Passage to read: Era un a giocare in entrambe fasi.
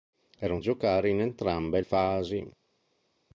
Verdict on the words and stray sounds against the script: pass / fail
pass